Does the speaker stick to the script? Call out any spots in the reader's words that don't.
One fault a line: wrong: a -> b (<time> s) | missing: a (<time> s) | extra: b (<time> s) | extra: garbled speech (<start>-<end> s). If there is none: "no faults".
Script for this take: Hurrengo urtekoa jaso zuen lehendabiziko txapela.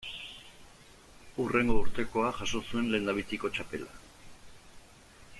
no faults